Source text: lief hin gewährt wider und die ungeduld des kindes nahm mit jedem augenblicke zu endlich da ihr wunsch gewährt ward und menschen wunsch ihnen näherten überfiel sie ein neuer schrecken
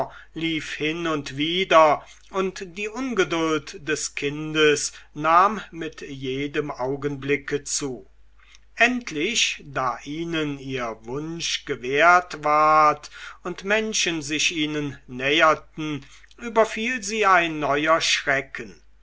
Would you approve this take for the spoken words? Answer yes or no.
no